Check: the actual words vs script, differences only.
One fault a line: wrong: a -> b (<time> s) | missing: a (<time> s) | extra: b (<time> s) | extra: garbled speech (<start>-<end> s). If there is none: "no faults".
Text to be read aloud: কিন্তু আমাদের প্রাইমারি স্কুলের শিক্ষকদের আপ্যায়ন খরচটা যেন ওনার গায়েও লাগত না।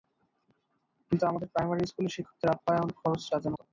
missing: ওনার গায়েও লাগত (3.5 s)